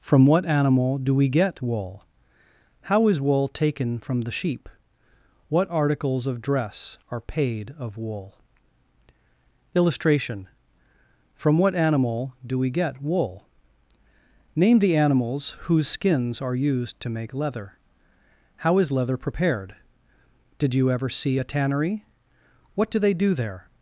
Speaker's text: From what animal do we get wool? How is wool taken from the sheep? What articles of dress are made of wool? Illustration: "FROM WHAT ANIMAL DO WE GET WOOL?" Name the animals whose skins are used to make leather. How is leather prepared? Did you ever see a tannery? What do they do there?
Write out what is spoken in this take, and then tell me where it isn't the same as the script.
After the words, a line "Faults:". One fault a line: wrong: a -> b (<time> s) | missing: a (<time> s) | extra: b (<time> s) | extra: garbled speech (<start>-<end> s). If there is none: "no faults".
From what animal do we get wool? How is wool taken from the sheep? What articles of dress are paid of wool? Illustration: "FROM WHAT ANIMAL DO WE GET WOOL?" Name the animals whose skins are used to make leather. How is leather prepared? Did you ever see a tannery? What do they do there?
Faults:
wrong: made -> paid (7.2 s)